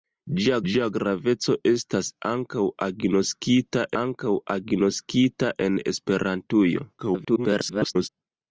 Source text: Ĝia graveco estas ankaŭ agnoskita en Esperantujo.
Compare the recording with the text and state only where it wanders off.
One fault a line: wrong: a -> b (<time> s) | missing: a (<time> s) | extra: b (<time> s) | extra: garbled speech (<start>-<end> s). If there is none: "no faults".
extra: ĝia (0.7 s)
extra: ankaŭ agnoskita (4.0 s)
extra: garbled speech (7.0-8.1 s)